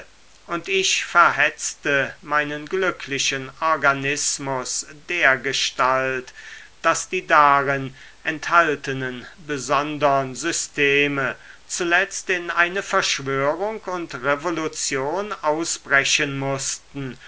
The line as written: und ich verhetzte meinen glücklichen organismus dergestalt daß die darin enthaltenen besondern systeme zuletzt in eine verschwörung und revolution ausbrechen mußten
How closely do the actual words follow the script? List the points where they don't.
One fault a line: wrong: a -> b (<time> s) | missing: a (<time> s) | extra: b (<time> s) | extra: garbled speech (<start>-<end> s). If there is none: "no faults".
no faults